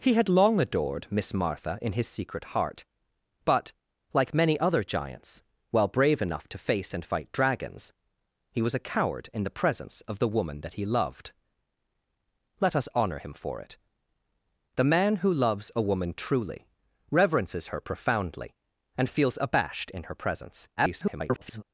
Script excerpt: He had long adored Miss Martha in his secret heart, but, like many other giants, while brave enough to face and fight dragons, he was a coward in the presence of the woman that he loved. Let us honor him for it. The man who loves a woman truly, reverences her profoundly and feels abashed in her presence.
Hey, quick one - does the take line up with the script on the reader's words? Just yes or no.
no